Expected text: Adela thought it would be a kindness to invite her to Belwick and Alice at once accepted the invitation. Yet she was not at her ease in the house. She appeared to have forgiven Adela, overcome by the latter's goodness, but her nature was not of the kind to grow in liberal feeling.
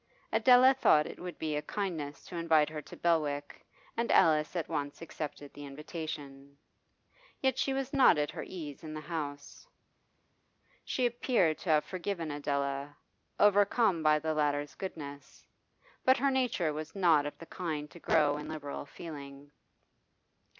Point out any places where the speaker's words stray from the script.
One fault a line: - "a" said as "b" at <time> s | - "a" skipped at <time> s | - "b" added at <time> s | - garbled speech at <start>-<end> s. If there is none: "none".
none